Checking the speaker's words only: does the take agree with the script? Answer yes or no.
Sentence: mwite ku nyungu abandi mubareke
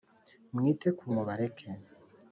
no